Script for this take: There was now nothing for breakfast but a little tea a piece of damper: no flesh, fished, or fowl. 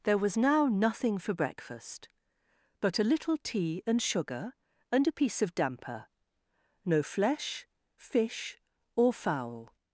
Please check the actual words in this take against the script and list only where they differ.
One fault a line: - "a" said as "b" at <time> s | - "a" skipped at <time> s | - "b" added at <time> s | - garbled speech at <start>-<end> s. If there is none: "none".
- "and sugar and" added at 3.9 s
- "fished" said as "fish" at 8.0 s